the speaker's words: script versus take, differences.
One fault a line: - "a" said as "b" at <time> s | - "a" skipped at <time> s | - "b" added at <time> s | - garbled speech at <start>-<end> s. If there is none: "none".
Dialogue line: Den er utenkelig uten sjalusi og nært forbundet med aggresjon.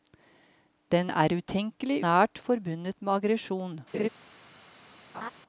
- "uten sjalusi og" skipped at 2.0 s